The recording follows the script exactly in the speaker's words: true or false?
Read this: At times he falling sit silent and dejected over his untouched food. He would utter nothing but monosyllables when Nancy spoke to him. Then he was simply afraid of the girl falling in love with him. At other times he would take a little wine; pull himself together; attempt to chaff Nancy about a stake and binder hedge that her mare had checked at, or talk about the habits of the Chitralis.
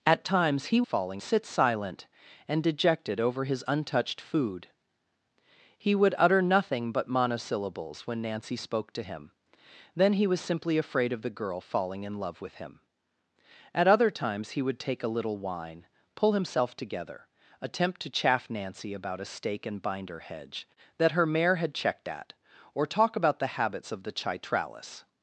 true